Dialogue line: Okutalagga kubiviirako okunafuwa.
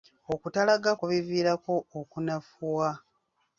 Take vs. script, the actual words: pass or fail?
pass